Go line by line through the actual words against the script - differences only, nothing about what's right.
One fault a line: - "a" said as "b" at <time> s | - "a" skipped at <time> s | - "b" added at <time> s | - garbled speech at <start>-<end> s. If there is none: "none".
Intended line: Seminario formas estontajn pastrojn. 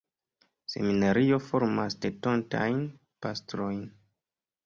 none